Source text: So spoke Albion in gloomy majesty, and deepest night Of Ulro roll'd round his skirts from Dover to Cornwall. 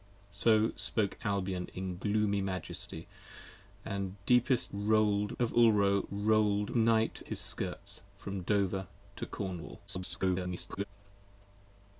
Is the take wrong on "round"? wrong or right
wrong